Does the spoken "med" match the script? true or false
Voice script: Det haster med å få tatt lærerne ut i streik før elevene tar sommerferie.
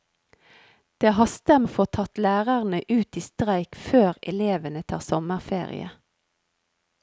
false